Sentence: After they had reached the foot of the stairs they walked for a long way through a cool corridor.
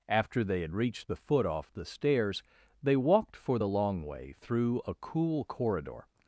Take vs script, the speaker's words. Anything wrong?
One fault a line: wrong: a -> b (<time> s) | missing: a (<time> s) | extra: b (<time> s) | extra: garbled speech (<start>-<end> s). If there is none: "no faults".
wrong: of -> off (1.4 s)
wrong: a -> the (3.6 s)